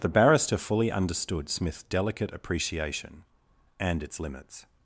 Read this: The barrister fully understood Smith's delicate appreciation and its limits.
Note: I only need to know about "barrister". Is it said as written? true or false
true